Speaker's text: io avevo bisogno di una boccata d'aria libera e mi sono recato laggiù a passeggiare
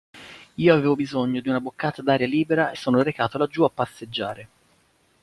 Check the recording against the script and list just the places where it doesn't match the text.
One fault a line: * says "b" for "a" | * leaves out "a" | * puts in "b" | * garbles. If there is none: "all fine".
* leaves out "mi"